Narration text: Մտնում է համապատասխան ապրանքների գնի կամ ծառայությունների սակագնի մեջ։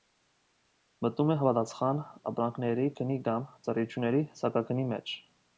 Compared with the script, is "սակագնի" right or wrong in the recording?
right